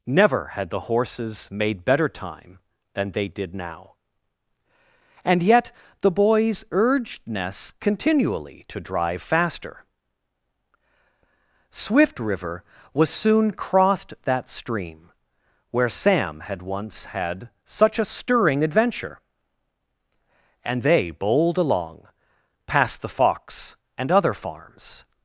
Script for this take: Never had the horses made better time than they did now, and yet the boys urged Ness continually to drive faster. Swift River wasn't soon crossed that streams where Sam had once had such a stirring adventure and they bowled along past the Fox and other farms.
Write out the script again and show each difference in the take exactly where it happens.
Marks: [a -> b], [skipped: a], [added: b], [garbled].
Never had the horses made better time than they did now, and yet the boys urged Ness continually to drive faster. Swift River [wasn't -> was] soon crossed that [streams -> stream] where Sam had once had such a stirring adventure and they bowled along past the Fox and other farms.